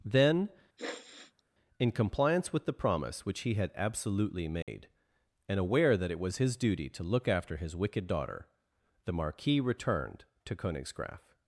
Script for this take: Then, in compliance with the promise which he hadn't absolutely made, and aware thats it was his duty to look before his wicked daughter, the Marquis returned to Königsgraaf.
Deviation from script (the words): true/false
true